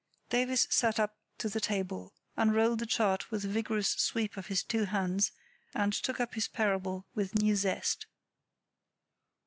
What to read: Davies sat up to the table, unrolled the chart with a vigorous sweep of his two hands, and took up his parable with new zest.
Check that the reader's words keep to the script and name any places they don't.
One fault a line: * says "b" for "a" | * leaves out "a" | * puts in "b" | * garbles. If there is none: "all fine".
all fine